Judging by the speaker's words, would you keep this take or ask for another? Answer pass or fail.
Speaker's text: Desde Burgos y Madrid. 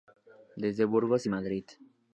pass